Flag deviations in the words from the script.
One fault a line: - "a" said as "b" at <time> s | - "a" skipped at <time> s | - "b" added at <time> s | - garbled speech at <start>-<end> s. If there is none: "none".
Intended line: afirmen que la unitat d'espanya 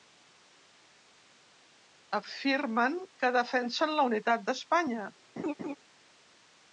- "defensen" added at 3.4 s